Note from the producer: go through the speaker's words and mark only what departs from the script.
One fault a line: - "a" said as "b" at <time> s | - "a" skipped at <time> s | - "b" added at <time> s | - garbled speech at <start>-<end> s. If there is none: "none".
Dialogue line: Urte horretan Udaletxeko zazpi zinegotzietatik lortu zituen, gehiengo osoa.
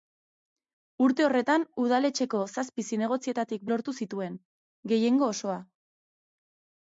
none